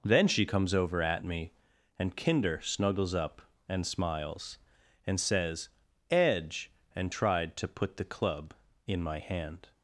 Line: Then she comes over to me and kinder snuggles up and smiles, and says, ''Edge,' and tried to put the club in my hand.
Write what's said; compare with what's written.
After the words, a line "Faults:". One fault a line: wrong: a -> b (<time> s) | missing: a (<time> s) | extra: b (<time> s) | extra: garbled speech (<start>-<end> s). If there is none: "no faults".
Then she comes over at me and kinder snuggles up and smiles, and says, ''Edge,' and tried to put the club in my hand.
Faults:
wrong: to -> at (1.0 s)